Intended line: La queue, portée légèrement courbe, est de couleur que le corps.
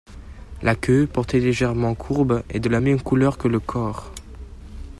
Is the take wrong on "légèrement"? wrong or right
right